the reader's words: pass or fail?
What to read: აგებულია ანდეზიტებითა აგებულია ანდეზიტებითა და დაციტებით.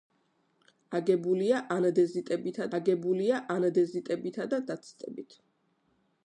pass